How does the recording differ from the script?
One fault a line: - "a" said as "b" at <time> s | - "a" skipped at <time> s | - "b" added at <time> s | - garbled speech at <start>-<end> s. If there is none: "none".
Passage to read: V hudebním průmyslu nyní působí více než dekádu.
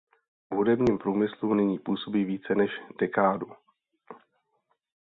none